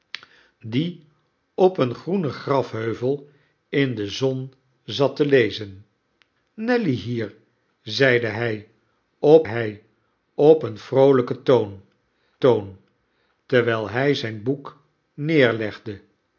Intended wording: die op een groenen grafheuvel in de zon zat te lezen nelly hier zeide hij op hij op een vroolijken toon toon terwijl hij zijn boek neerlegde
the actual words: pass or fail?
pass